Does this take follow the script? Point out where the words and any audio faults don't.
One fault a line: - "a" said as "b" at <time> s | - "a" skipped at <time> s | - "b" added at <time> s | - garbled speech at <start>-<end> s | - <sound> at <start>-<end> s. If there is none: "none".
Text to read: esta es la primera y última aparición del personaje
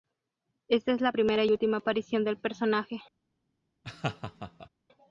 - laugh at 3.8-4.7 s